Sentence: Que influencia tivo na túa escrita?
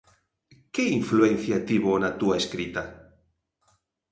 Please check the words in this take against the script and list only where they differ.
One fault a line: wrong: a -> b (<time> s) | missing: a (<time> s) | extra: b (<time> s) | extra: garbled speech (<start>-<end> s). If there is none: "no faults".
no faults